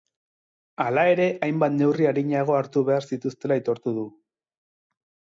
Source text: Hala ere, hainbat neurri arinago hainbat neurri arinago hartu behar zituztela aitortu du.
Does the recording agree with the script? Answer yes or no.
no